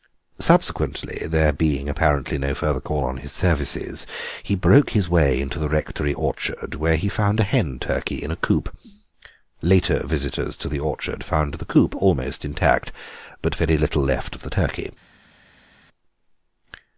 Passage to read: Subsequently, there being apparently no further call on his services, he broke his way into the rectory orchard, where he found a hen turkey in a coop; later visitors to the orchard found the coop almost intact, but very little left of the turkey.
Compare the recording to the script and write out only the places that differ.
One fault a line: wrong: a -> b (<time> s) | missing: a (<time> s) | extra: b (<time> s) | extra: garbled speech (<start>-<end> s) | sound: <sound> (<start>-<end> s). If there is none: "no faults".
no faults